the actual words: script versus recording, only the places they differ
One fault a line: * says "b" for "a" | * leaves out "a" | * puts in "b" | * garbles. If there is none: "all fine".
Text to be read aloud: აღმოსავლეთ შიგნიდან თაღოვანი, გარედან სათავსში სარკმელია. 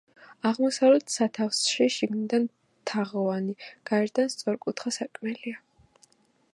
* puts in "სათავსში"
* says "სწორკუთხა" for "სათავსში"